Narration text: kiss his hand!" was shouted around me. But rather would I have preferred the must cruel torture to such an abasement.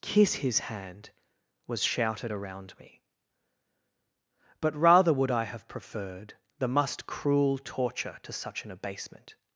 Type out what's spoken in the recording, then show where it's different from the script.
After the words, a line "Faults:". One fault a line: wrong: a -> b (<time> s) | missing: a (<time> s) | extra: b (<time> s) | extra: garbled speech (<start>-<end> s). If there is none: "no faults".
kiss his hand!" was shouted around me. But rather would I have preferred the must cruel torture to such an abasement.
Faults:
no faults